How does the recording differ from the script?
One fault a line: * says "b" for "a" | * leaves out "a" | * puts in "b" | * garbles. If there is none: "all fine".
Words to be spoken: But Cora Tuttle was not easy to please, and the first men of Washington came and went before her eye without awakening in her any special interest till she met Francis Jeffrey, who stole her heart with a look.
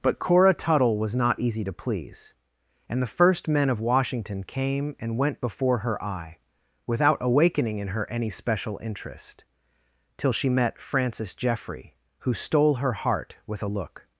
all fine